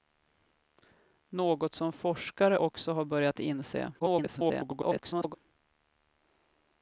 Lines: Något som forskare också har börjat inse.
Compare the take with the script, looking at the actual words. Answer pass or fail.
fail